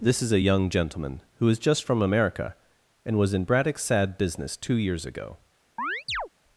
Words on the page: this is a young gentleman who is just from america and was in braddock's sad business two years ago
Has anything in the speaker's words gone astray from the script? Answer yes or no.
no